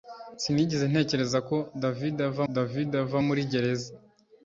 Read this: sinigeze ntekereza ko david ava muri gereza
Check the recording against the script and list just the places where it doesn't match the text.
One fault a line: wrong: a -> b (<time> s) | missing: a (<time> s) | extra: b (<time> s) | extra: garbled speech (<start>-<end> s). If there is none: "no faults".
extra: david ava (2.5 s)